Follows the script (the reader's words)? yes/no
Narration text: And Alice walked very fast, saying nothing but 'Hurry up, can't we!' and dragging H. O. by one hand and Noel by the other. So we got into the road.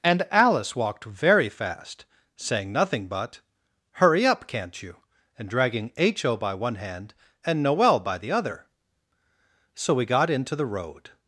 no